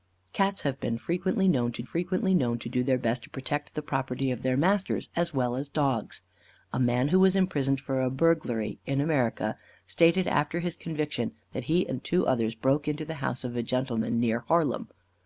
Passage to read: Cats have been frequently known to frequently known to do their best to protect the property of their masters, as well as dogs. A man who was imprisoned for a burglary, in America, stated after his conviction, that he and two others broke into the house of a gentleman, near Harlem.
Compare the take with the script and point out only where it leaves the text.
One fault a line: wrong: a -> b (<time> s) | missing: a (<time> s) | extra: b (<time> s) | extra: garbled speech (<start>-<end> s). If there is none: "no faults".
no faults